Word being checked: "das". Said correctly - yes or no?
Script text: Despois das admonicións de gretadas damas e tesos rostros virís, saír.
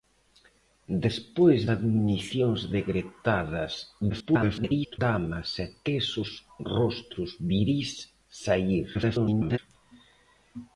no